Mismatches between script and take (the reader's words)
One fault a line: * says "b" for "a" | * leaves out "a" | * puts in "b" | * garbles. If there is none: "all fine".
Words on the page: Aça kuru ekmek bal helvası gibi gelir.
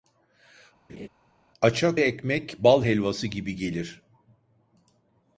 * leaves out "kuru"